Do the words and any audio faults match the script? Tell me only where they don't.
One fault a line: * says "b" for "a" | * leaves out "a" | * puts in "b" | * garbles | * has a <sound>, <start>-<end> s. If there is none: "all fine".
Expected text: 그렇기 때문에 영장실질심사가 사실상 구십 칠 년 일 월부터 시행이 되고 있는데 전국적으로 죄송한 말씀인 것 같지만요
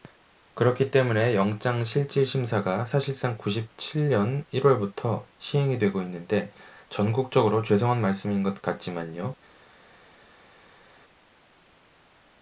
all fine